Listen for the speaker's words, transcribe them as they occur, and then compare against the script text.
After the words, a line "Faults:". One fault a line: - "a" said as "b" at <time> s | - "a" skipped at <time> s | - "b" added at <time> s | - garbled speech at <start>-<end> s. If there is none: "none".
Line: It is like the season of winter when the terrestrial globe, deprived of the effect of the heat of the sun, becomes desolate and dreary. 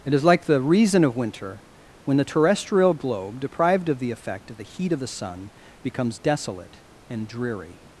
It is like the reason of winter when the terrestrial globe, deprived of the effect of the heat of the sun, becomes desolate and dreary.
Faults:
- "season" said as "reason" at 0.6 s